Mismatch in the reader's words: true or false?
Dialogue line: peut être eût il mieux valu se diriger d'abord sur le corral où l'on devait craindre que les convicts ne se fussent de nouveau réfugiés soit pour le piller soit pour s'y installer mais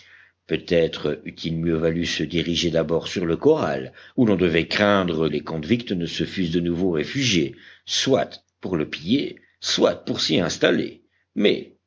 true